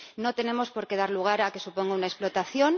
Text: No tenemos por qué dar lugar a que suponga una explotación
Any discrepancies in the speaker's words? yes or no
no